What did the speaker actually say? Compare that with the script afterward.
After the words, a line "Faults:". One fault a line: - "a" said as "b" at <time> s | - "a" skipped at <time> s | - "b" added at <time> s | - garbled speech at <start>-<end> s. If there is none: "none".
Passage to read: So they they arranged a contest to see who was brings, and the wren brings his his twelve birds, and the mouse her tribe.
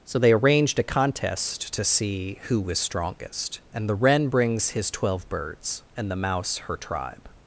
So they arranged a contest to see who was strongest, and the wren brings his twelve birds, and the mouse her tribe.
Faults:
- "they" skipped at 0.3 s
- "brings" said as "strongest" at 2.8 s
- "his" skipped at 4.9 s